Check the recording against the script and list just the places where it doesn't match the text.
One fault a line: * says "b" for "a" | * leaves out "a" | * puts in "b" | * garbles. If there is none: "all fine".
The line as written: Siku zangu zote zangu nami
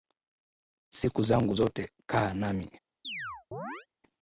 * says "kaa" for "zangu"